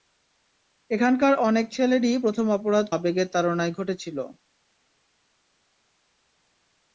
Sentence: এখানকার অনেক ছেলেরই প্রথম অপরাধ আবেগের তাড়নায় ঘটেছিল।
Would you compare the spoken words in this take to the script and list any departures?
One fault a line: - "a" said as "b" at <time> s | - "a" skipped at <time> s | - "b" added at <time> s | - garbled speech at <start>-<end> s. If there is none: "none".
none